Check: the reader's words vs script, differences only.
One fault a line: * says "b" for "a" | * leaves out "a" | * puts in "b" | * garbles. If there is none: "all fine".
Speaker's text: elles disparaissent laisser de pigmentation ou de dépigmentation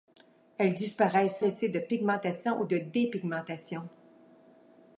all fine